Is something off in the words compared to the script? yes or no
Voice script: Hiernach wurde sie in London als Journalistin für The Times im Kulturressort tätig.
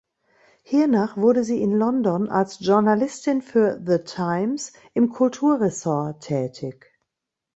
no